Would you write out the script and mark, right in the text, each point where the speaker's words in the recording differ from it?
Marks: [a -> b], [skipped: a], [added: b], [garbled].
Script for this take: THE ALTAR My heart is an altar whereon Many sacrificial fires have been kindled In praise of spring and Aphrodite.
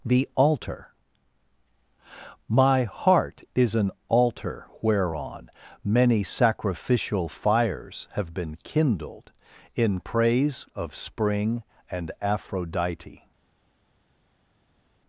THE ALTAR My heart is an altar whereon Many sacrificial fires have been kindled In praise of spring and Aphrodite.